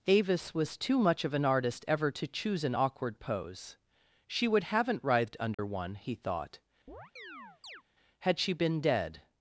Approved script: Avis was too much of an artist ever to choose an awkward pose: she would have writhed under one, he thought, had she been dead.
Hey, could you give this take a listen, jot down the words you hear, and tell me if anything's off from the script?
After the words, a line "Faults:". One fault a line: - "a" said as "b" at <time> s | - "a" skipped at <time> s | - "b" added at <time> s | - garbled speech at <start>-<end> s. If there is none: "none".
Avis was too much of an artist ever to choose an awkward pose: she would haven't writhed under one, he thought, had she been dead.
Faults:
- "have" said as "haven't" at 4.6 s